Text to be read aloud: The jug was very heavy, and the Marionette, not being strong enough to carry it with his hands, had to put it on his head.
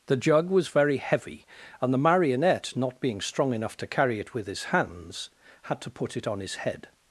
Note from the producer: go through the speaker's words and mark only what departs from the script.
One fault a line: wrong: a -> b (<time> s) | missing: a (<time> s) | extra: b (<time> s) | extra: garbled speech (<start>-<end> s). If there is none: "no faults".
no faults